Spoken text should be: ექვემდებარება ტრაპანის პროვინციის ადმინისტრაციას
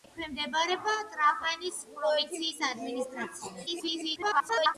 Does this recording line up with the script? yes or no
no